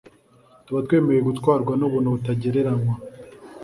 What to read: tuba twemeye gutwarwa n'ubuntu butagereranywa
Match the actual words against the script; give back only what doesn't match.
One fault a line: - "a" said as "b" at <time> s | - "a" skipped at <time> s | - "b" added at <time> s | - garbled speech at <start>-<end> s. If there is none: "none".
none